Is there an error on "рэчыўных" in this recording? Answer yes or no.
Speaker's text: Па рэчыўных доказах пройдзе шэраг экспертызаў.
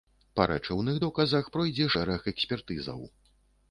no